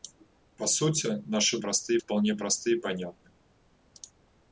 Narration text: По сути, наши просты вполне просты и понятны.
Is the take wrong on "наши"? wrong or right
right